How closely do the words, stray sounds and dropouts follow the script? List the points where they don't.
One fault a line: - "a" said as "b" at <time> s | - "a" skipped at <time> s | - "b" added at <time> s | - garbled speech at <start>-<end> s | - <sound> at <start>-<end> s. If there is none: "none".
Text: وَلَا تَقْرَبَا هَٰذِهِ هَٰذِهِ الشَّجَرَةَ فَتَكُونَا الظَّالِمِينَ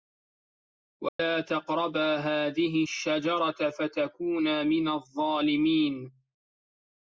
- dropout at 1.1-1.2 s
- "هَٰذِهِ" skipped at 2.8 s
- "مِنَ" added at 4.6 s